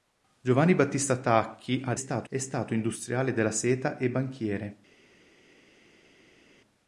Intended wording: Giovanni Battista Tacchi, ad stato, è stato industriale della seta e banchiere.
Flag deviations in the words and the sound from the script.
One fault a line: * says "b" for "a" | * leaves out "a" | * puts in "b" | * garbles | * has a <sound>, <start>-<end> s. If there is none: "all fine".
all fine